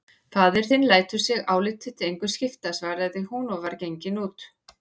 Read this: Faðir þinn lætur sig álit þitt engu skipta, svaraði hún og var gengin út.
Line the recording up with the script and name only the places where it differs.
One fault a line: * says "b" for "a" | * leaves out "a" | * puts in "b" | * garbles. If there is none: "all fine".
all fine